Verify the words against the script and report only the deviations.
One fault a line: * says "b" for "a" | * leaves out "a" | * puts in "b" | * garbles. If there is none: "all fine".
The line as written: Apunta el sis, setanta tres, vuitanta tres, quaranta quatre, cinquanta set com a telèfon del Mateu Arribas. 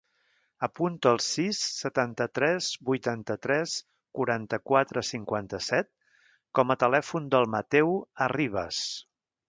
all fine